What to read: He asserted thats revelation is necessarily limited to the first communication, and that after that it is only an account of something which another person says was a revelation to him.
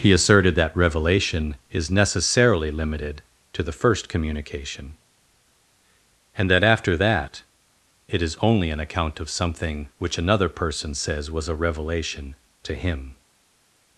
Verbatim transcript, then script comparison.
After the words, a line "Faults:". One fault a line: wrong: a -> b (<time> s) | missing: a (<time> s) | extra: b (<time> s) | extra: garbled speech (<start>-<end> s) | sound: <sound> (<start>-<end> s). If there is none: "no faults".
He asserted that revelation is necessarily limited to the first communication, and that after that it is only an account of something which another person says was a revelation to him.
Faults:
wrong: thats -> that (0.5 s)